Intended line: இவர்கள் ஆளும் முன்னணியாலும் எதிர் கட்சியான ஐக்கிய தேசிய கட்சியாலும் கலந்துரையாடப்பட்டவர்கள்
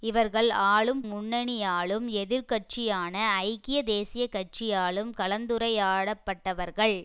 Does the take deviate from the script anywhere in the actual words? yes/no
no